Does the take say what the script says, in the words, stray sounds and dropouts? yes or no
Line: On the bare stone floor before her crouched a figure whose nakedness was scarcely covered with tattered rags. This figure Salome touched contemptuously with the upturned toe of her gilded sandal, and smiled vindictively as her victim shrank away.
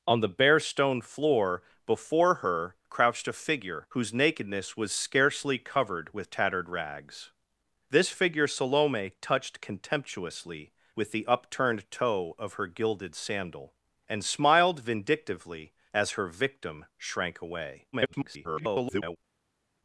no